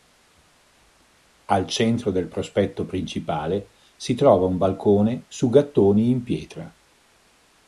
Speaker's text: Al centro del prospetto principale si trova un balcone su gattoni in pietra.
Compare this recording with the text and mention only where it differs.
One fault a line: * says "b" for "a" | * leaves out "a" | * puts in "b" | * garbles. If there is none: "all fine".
all fine